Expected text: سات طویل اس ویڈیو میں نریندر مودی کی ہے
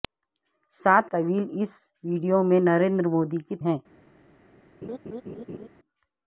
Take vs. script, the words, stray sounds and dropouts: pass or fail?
fail